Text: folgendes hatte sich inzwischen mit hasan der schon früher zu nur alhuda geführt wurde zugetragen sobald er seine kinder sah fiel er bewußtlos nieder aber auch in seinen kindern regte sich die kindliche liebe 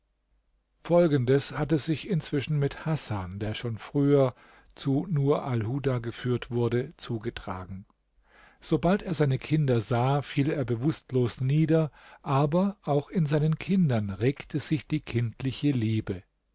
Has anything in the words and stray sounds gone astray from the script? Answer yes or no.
no